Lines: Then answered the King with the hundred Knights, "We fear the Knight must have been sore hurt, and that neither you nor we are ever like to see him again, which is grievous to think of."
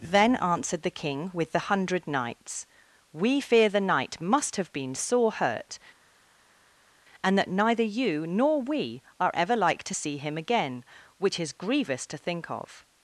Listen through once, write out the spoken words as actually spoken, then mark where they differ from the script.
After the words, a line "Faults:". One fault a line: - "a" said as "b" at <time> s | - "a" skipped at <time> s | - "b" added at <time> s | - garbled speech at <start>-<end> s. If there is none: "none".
Then answered the King with the hundred Knights, "We fear the Knight must have been sore hurt, and that neither you nor we are ever like to see him again, which is grievous to think of."
Faults:
none